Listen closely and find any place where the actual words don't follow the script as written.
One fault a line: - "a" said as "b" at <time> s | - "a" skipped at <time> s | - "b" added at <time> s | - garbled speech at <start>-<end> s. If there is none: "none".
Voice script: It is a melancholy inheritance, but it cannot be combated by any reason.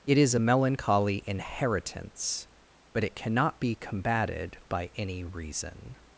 none